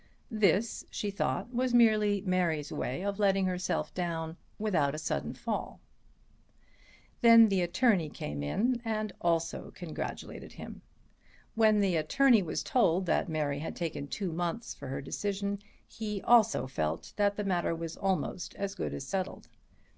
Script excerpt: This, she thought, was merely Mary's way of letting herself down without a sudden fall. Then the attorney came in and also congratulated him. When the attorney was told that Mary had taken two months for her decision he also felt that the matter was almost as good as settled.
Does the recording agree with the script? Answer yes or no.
yes